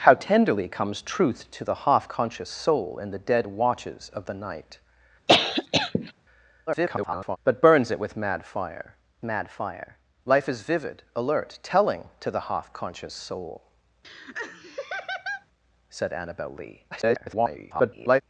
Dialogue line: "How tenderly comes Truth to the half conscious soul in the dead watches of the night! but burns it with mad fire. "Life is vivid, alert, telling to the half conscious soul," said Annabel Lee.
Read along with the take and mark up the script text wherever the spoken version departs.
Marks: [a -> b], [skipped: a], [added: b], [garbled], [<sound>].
"How tenderly comes Truth to the half conscious soul in the dead watches of the night! [cough] [garbled] but burns it with mad fire. [added: mad fire] "Life is vivid, alert, telling to the half conscious soul," [laugh] said Annabel Lee. [garbled]